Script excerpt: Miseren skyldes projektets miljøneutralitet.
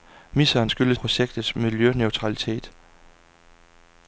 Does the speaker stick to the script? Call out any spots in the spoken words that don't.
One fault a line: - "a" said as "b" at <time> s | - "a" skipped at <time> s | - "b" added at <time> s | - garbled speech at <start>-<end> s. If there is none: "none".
none